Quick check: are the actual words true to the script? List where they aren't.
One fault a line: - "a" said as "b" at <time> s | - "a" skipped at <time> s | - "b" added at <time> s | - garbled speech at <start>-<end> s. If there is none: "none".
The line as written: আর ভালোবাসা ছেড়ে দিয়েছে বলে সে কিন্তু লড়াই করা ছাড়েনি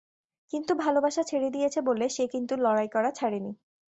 - "আর" said as "কিন্তু" at 0.5 s